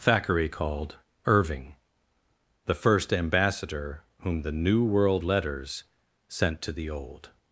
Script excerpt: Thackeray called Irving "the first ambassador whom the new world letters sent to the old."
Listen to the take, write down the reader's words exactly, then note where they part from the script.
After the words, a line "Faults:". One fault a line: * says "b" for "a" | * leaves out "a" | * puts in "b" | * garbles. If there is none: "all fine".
Thackeray called Irving "the first ambassador whom the new world letters sent to the old."
Faults:
all fine